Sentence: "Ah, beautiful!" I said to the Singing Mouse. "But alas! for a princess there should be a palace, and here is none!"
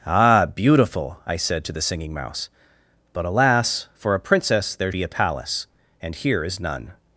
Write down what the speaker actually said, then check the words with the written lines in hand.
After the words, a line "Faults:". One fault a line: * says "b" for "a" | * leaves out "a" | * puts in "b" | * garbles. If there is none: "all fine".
"Ah, beautiful!" I said to the Singing Mouse. "But alas! for a princess there be a palace, and here is none!"
Faults:
* leaves out "should"